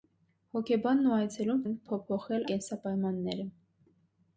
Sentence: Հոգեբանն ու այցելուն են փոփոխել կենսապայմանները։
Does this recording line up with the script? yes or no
yes